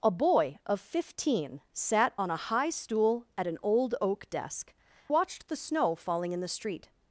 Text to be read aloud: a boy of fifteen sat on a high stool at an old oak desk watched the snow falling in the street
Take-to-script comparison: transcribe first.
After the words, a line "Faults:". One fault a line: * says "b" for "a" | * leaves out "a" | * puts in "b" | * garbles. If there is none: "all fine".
a boy of fifteen sat on a high stool at an old oak desk watched the snow falling in the street
Faults:
all fine